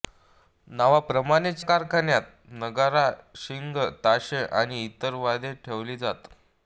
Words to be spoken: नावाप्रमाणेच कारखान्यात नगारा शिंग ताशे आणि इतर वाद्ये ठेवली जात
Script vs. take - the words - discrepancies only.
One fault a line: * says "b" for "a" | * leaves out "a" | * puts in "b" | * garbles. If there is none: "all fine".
all fine